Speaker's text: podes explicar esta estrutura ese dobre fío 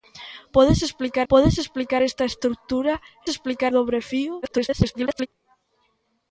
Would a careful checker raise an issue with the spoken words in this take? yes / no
yes